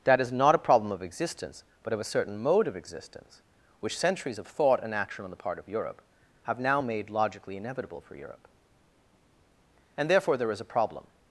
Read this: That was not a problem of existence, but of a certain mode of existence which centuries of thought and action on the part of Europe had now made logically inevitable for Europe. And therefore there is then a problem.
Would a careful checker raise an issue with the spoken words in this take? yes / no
yes